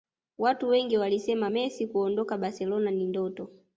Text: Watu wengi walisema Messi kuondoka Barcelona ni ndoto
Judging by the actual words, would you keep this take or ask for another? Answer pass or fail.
pass